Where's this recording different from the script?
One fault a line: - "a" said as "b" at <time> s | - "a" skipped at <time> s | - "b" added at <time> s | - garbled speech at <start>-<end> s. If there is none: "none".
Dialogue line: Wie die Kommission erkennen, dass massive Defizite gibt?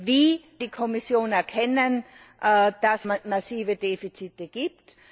none